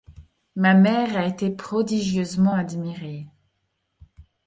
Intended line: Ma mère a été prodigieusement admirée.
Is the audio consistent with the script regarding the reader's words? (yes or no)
yes